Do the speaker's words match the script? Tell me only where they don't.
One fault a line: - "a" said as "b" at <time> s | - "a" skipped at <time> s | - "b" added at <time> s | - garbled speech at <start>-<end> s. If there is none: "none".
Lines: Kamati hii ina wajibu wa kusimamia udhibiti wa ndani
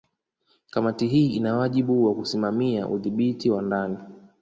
none